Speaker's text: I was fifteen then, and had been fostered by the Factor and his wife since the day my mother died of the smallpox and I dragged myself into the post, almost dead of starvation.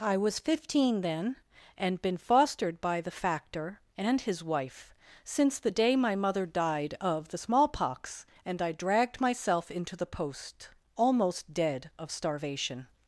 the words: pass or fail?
fail